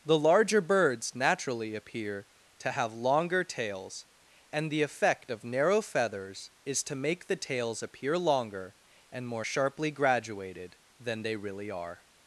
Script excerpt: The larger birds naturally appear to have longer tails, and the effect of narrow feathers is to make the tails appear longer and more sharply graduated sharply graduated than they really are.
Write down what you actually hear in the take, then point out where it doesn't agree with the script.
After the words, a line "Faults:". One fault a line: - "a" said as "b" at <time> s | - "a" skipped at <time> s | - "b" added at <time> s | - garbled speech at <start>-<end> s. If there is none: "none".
The larger birds naturally appear to have longer tails, and the effect of narrow feathers is to make the tails appear longer and more sharply graduated than they really are.
Faults:
- "sharply graduated" skipped at 10.8 s